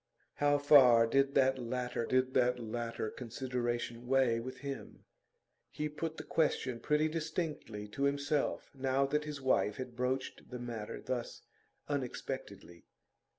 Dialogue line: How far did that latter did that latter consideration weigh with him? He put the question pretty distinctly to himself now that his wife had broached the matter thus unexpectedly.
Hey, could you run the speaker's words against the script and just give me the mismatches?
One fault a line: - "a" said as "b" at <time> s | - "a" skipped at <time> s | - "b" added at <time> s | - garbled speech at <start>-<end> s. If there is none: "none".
none